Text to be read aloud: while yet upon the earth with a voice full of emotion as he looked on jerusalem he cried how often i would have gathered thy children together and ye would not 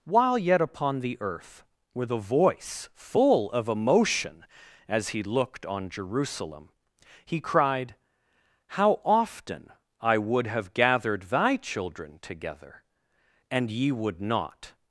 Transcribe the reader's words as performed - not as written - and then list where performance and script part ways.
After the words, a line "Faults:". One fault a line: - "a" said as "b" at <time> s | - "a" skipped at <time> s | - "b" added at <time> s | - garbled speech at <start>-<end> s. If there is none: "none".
while yet upon the earth with a voice full of emotion as he looked on jerusalem he cried how often i would have gathered thy children together and ye would not
Faults:
none